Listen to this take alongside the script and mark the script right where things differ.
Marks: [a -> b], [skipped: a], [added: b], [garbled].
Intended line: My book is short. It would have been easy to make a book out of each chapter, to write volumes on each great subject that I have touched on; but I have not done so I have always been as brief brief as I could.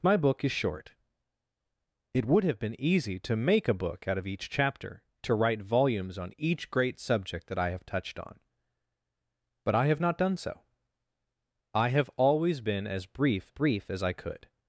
My book is short. It would have been easy to make a book out of each chapter, to write volumes on each great subject that I have touched on; but I have not done so I have always been as brief brief as I could.